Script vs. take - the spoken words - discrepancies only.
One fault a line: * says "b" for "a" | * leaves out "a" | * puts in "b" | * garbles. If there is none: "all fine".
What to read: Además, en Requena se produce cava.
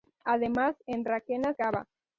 * leaves out "se produce"